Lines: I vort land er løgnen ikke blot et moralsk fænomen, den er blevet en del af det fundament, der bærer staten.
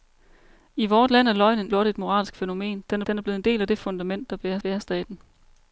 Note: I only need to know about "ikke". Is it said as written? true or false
false